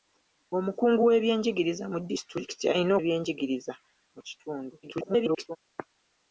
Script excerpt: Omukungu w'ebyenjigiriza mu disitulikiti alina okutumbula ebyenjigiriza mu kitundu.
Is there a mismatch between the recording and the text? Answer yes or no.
yes